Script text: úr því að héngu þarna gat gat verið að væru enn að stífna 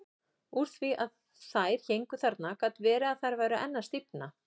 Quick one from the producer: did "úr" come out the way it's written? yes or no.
yes